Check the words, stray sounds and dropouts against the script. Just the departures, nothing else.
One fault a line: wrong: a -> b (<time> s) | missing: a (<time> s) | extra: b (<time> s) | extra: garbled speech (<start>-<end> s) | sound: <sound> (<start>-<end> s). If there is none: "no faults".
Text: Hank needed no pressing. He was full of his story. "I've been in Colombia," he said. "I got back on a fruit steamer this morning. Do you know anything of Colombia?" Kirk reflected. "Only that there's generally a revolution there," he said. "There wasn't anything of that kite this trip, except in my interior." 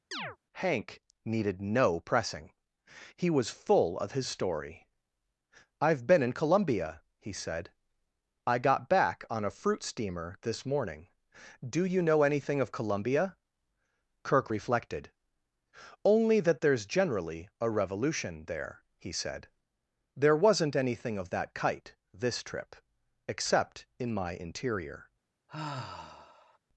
sound: chirp (0.1-0.4 s)
sound: sigh (25.5-26.6 s)